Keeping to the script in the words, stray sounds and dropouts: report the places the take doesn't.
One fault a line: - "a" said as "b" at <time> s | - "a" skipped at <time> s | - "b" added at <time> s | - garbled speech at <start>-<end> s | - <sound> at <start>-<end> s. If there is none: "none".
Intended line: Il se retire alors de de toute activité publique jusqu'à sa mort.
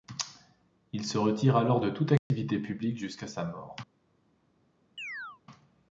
- "de" skipped at 1.9 s
- dropout at 2.2-2.3 s
- chirp at 5.0-5.4 s